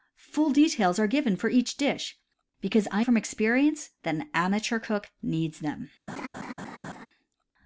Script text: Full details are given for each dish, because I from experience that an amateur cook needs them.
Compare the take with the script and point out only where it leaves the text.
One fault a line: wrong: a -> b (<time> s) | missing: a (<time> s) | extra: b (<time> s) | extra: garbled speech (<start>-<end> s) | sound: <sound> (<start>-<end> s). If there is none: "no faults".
sound: laugh (6.1-7.1 s)